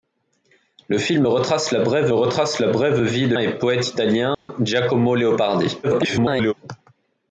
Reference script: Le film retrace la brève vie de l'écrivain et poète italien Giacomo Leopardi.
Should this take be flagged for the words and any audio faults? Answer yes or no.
yes